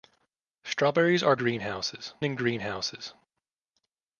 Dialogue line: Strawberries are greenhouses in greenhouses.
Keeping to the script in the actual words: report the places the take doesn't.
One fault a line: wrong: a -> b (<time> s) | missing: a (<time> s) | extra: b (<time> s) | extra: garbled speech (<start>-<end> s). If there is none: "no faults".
no faults